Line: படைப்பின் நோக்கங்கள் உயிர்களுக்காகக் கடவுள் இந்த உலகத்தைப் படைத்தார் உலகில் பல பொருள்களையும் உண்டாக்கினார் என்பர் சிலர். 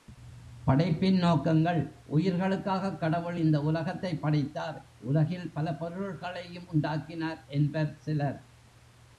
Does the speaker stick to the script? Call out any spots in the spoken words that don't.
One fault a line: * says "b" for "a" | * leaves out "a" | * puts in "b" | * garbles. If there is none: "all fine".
all fine